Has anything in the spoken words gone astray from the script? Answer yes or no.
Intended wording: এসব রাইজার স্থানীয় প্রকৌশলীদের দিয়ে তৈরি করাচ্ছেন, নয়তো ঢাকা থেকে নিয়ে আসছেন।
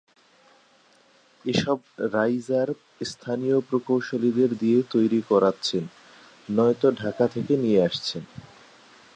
no